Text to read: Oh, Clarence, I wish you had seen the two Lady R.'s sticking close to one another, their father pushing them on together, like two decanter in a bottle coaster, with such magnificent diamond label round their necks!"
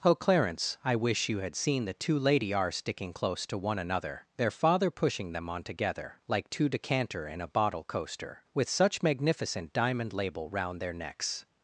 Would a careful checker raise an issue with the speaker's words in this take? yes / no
no